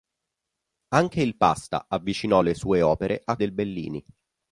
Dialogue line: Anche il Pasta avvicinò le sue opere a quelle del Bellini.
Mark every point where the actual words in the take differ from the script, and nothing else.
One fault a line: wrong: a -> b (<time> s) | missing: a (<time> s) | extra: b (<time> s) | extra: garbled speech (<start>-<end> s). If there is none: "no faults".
missing: quelle (3.4 s)